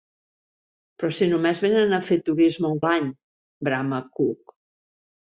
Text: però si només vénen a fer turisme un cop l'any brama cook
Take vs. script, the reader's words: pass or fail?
fail